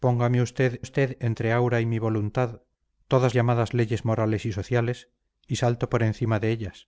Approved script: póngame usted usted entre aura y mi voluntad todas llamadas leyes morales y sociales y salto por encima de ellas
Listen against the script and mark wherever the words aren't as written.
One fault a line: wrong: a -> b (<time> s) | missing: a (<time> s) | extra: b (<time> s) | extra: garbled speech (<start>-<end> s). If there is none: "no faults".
no faults